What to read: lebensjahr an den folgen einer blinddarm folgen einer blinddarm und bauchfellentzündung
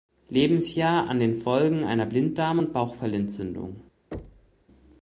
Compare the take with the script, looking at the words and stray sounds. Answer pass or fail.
fail